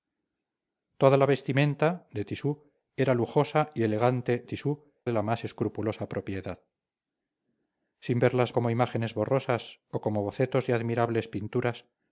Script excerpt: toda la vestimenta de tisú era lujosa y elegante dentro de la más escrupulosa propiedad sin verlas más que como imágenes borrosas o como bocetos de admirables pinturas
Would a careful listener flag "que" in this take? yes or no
yes